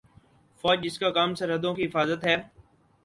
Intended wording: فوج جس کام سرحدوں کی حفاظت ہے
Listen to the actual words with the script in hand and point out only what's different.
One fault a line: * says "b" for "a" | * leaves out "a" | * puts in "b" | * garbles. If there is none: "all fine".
* puts in "کا"